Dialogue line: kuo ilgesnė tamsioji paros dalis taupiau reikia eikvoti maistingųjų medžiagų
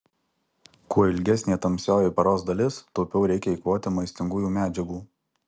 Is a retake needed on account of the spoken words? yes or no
no